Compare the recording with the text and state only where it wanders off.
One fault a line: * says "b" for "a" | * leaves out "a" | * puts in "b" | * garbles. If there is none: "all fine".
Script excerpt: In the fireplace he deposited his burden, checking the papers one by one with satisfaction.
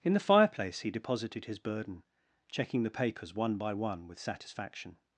all fine